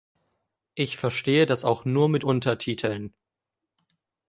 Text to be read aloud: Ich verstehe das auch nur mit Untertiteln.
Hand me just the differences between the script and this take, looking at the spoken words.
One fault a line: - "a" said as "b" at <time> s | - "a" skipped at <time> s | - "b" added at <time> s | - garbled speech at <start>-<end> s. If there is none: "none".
none